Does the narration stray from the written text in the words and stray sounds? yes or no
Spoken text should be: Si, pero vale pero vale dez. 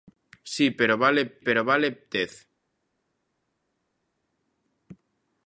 no